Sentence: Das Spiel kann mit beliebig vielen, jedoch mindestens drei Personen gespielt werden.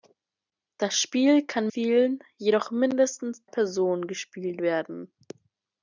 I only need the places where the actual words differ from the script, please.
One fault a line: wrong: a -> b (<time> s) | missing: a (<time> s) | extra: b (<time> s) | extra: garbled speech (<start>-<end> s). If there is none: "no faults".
missing: mit beliebig (1.7 s)
missing: drei (3.5 s)